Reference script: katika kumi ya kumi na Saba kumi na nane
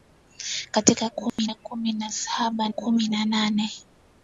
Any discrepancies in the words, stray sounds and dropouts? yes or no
yes